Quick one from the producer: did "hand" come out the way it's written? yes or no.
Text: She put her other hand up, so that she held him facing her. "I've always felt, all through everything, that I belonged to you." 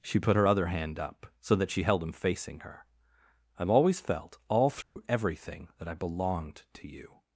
yes